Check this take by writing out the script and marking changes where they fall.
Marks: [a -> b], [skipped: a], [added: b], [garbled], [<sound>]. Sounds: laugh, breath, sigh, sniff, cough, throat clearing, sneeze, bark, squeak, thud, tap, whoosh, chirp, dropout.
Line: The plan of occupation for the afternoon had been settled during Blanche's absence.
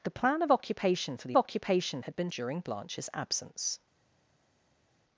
The plan of occupation for the [afternoon -> occupation] had been [skipped: settled] during Blanche's absence.